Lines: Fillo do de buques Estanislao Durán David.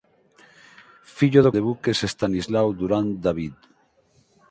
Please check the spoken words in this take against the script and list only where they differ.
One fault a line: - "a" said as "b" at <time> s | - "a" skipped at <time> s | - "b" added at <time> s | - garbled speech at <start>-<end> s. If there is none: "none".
none